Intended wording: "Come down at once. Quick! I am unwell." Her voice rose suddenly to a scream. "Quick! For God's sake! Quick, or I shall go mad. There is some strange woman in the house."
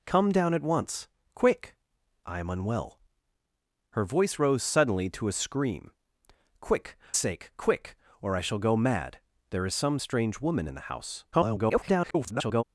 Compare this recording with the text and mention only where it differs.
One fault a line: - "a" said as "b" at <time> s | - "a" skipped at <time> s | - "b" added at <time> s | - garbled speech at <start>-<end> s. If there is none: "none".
- "For God's" skipped at 7.0 s
- garbled speech at 11.3-12.6 s